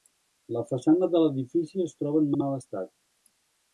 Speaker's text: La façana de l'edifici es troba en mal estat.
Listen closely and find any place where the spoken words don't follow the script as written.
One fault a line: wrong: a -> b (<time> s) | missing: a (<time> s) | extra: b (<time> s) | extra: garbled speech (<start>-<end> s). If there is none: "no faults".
extra: en (2.3 s)